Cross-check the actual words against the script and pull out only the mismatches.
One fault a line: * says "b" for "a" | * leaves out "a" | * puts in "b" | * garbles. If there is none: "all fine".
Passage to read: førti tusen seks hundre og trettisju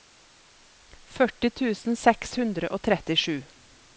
all fine